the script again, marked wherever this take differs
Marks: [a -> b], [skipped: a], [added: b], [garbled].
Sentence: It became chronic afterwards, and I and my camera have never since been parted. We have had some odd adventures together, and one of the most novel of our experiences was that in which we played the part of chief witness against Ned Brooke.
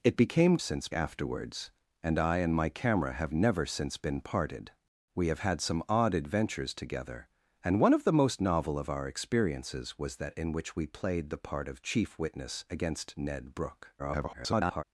It became [chronic -> since] afterwards, and I and my camera have never since been parted. We have had some odd adventures together, and one of the most novel of our experiences was that in which we played the part of chief witness against Ned Brooke. [garbled]